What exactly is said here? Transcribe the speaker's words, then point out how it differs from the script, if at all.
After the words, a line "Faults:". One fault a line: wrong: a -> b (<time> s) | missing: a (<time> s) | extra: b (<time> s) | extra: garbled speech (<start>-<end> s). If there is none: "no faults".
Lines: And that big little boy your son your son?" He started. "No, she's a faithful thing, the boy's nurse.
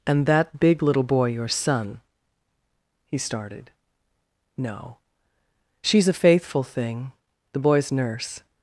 And that big little boy your son?" He started. "No, she's a faithful thing, the boy's nurse.
Faults:
missing: your son (2.0 s)